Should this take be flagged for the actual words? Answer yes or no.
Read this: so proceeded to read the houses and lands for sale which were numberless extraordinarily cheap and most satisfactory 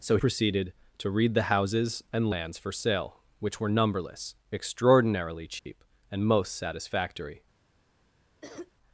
no